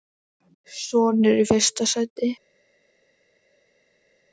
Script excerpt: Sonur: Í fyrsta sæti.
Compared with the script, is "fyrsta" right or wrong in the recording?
right